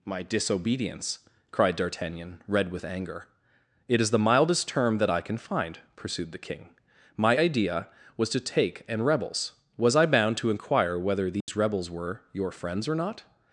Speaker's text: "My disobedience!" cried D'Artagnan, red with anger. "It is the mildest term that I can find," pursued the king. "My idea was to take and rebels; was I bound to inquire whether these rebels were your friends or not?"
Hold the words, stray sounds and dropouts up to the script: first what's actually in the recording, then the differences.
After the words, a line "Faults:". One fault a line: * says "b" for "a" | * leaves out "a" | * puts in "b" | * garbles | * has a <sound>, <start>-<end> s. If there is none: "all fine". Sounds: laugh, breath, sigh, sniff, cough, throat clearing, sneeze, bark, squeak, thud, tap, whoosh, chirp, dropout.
"My disobedience!" cried D'Artagnan, red with anger. "It is the mildest term that I can find," pursued the king. "My idea was to take and rebels; was I bound to inquire whether these rebels were your friends or not?"
Faults:
* has a dropout, 11.4-11.5 s